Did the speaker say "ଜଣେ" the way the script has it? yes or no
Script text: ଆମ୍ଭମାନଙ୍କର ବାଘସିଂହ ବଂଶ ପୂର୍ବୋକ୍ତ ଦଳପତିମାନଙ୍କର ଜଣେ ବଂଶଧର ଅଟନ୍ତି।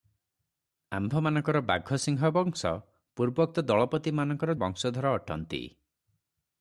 no